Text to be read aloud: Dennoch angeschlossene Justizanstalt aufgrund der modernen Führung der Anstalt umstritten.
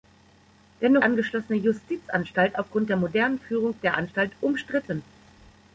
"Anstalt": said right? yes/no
yes